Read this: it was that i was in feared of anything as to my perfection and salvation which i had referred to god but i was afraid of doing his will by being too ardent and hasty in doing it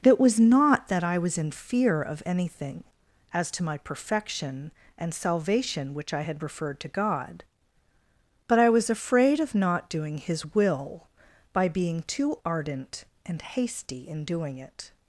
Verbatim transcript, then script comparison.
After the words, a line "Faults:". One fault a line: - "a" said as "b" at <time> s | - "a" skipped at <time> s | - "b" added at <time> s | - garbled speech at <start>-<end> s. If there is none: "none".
it was not that i was in fear of anything as to my perfection and salvation which i had referred to god but i was afraid of not doing his will by being too ardent and hasty in doing it
Faults:
- "not" added at 0.4 s
- "feared" said as "fear" at 1.5 s
- "not" added at 9.6 s